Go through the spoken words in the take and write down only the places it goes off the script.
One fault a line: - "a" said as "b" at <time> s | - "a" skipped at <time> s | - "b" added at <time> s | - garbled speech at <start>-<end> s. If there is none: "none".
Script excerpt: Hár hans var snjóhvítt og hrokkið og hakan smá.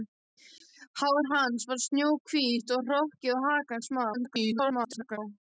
- garbled speech at 4.1-5.2 s